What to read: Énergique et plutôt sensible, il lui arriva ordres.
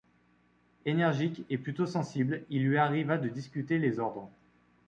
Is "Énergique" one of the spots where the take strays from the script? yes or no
no